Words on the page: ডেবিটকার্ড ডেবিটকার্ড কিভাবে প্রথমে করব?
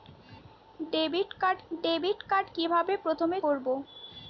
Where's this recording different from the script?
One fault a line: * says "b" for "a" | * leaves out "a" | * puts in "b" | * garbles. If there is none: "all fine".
all fine